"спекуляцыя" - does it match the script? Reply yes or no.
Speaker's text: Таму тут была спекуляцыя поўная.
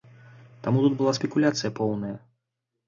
yes